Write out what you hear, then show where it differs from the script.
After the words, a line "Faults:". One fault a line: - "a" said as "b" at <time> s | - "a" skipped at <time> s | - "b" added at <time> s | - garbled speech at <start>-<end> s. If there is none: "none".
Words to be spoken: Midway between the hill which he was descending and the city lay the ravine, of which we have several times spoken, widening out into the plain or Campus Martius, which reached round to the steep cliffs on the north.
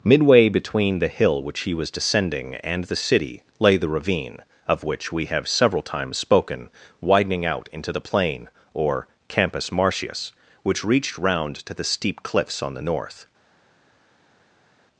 Midway between the hill which he was descending and the city lay the ravine, of which we have several times spoken, widening out into the plain or Campus Martius, which reached round to the steep cliffs on the north.
Faults:
none